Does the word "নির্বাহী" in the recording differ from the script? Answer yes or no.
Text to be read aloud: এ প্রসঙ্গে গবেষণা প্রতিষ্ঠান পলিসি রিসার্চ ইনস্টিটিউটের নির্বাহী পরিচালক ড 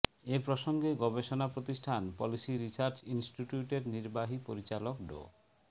no